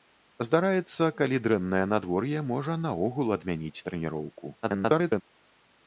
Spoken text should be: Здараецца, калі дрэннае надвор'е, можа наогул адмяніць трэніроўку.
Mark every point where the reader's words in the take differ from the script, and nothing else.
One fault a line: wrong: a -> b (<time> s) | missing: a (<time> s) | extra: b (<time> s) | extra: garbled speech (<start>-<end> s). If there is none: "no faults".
extra: garbled speech (4.6-5.2 s)